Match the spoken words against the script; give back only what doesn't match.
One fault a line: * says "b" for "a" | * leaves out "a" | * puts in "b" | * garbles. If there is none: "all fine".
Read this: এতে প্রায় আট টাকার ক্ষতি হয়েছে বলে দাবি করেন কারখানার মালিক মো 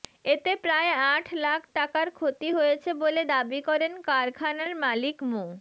* puts in "লাখ"